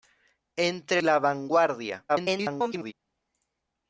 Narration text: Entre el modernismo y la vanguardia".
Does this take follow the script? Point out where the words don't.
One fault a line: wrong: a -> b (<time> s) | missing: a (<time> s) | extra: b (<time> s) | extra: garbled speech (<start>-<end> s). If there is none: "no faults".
missing: el modernismo y (1.0 s)
extra: garbled speech (2.1-2.9 s)